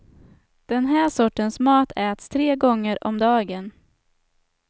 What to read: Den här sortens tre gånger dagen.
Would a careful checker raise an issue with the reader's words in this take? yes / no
yes